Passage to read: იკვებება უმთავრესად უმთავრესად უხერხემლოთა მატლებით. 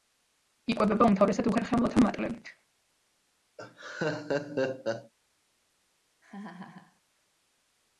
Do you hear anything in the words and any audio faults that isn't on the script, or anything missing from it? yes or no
yes